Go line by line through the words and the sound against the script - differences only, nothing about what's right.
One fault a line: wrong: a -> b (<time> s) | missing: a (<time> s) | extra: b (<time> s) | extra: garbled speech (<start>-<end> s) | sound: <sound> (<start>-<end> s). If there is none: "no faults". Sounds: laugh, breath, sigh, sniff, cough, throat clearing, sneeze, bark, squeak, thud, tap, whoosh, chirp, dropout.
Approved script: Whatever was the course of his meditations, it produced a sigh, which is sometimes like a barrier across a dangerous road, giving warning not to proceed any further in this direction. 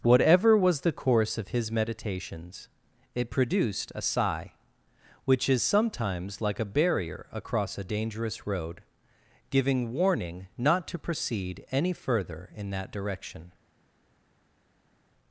wrong: this -> that (12.7 s)